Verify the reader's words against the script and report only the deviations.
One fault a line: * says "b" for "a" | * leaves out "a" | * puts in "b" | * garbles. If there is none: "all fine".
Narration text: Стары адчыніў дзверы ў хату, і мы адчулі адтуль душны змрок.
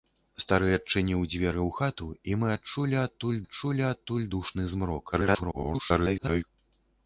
* puts in "адчулі адтуль"
* garbles